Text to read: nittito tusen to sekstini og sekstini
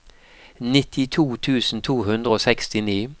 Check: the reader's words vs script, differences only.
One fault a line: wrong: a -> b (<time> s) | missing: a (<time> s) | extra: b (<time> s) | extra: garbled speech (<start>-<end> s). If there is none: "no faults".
wrong: sekstini -> hundre (2.0 s)